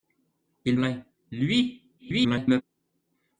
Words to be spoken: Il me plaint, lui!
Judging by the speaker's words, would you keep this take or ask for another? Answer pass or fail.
fail